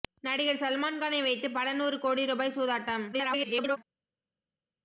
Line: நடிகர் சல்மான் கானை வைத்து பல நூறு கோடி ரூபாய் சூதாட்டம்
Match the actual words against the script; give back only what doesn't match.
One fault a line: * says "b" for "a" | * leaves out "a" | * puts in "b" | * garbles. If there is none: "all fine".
* garbles